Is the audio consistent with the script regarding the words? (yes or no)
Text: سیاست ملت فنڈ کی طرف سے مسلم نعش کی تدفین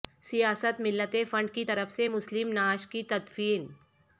yes